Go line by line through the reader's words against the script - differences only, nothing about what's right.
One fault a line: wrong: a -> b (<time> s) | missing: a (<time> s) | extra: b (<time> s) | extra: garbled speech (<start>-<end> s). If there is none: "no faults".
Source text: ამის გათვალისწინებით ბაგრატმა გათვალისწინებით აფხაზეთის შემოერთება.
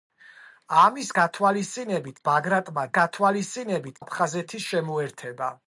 no faults